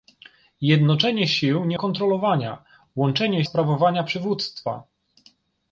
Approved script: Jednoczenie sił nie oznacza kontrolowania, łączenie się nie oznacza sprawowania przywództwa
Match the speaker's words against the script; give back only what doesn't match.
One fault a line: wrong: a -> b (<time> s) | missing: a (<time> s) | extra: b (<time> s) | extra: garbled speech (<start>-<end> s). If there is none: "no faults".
missing: oznacza (1.8 s)
missing: się nie oznacza (3.4 s)